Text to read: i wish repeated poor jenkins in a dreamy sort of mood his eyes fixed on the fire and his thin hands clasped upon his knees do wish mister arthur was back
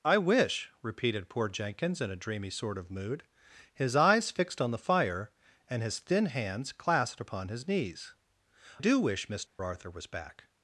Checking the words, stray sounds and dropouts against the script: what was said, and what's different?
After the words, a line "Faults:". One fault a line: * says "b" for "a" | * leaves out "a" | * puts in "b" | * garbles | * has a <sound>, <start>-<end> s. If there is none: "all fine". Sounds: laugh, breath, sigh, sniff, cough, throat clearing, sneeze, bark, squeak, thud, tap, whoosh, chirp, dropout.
i wish repeated poor jenkins in a dreamy sort of mood his eyes fixed on the fire and his thin hands clasped upon his knees do wish mister arthur was back
Faults:
* has a dropout, 9.5-9.6 s